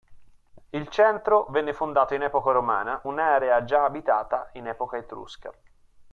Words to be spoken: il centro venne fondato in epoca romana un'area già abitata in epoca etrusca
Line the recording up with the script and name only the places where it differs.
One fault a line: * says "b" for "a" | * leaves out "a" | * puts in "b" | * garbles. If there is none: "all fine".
all fine